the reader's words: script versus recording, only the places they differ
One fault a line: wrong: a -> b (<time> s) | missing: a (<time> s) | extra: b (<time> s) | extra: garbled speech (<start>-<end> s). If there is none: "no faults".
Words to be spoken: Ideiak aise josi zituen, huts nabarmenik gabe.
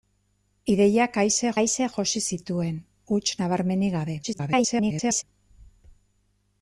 extra: aise (1.6 s)
extra: garbled speech (4.2-5.2 s)